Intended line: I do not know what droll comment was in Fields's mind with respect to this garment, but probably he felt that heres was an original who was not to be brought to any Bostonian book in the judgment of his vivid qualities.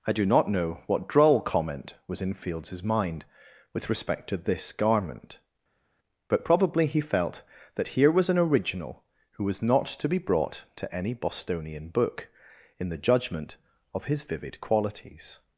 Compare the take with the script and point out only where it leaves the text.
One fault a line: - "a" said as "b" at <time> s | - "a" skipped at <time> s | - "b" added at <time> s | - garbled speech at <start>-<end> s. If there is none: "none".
- "heres" said as "here" at 7.9 s